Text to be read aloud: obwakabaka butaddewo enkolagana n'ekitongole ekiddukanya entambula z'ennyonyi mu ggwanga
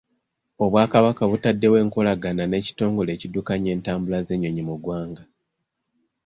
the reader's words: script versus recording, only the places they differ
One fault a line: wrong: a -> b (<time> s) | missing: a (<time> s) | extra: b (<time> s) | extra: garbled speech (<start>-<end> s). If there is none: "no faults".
no faults